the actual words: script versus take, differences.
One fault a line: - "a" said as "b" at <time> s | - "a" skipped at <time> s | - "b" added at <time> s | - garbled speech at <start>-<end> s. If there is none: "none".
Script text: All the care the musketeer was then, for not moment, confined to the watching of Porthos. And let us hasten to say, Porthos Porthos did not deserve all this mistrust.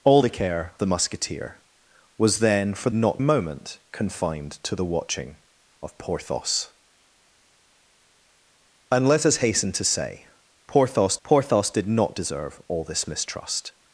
none